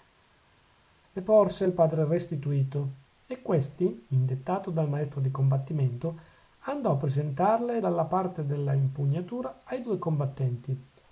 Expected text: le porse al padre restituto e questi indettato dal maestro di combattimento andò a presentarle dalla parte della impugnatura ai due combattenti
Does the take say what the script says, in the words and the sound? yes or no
yes